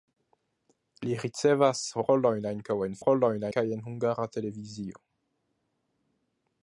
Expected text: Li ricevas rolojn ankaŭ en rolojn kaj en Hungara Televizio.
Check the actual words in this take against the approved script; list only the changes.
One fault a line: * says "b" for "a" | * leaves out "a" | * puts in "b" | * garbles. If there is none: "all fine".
all fine